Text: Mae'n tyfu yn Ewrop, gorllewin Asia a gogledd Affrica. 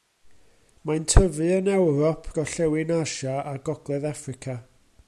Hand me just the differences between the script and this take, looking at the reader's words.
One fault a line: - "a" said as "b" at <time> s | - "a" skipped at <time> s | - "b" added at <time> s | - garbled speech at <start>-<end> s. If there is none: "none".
none